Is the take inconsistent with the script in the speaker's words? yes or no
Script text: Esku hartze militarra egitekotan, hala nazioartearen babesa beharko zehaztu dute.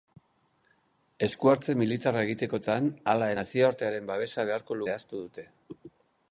no